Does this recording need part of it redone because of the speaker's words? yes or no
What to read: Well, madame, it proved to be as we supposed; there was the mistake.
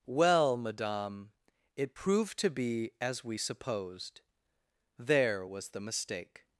no